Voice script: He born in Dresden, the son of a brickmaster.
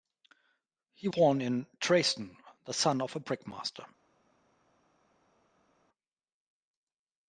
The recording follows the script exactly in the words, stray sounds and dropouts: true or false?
true